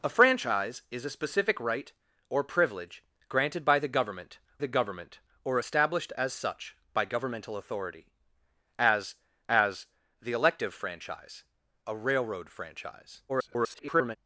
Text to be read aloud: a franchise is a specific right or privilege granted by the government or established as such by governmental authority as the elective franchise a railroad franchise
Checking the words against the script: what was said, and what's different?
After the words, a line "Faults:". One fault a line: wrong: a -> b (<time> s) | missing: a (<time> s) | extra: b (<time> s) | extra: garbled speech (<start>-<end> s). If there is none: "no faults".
a franchise is a specific right or privilege granted by the government the government or established as such by governmental authority as as the elective franchise a railroad franchise [garbled]
Faults:
extra: the government (4.6 s)
extra: as (9.5 s)
extra: garbled speech (13.3-14.2 s)